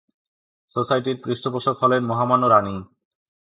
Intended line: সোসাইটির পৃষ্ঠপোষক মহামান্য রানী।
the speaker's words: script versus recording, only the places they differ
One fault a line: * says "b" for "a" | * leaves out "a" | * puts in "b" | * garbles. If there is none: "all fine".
* puts in "হলেন"